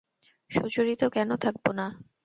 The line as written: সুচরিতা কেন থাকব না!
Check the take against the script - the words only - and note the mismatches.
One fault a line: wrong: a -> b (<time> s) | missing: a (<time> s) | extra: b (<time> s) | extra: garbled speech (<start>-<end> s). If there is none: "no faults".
no faults